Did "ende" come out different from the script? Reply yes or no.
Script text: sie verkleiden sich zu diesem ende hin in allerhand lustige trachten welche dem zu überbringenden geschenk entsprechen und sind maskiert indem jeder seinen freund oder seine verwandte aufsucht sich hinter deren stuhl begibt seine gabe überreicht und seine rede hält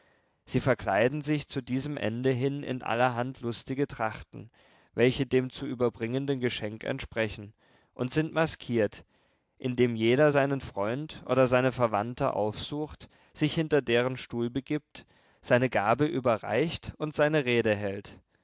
no